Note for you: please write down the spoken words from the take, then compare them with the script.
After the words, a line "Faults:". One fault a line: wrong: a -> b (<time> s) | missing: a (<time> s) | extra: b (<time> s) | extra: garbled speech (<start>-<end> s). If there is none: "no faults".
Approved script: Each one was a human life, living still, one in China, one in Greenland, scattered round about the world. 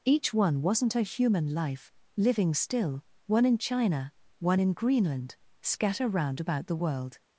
Each one wasn't a human life, living still, one in China, one in Greenland, scatter round about the world.
Faults:
wrong: was -> wasn't (0.6 s)
wrong: scattered -> scatter (5.6 s)